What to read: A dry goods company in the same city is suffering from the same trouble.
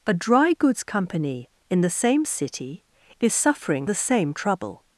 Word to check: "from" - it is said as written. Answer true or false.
false